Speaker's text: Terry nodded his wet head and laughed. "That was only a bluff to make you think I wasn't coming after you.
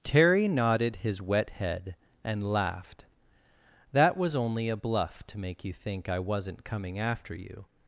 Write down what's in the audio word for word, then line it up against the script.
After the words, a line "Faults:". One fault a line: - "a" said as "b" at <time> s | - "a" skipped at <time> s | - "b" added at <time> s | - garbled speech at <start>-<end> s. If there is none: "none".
Terry nodded his wet head and laughed. "That was only a bluff to make you think I wasn't coming after you.
Faults:
none